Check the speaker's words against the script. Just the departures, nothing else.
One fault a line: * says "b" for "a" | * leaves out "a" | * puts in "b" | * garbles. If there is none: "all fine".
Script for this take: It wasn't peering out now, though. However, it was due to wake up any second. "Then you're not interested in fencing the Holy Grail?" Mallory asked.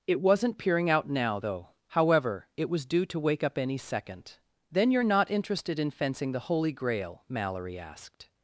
all fine